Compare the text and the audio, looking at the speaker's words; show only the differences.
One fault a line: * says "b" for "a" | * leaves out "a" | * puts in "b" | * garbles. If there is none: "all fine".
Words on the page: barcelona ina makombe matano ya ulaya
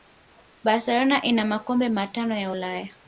all fine